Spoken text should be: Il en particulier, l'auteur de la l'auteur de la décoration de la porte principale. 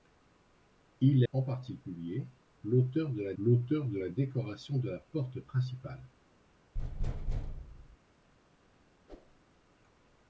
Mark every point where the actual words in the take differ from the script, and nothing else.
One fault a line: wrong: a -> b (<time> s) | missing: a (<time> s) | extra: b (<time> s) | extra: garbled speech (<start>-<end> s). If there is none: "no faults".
no faults